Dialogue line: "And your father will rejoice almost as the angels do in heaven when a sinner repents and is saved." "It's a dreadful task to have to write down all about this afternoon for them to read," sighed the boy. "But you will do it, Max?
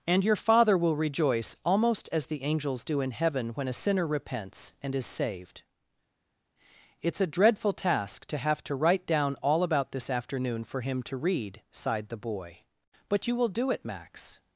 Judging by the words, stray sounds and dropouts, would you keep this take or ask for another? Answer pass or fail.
fail